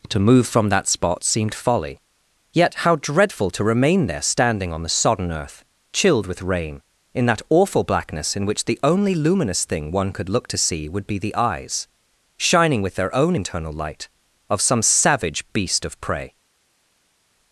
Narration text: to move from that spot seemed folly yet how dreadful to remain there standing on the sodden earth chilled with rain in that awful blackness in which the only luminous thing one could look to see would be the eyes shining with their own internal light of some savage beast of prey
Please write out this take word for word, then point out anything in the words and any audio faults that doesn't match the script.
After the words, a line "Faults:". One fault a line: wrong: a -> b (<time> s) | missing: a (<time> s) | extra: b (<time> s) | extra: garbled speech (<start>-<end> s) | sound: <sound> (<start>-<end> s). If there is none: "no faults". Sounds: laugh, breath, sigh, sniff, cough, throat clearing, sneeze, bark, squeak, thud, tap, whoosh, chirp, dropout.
to move from that spot seemed folly yet how dreadful to remain there standing on the sodden earth chilled with rain in that awful blackness in which the only luminous thing one could look to see would be the eyes shining with their own internal light of some savage beast of prey
Faults:
no faults